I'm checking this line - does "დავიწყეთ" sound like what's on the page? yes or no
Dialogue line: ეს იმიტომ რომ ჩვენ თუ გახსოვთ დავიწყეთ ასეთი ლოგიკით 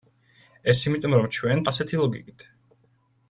no